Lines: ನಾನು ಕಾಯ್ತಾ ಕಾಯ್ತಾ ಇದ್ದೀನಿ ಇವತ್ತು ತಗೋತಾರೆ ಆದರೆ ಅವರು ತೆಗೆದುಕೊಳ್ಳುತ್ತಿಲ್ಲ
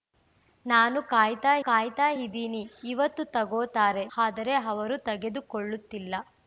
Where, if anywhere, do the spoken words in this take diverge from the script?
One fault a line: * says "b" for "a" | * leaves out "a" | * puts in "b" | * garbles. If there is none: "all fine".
all fine